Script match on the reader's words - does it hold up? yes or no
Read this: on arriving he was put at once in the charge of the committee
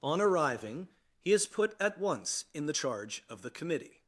no